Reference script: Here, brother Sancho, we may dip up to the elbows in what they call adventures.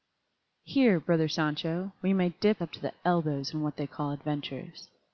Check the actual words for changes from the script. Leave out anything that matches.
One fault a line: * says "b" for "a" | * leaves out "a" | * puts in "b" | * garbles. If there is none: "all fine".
all fine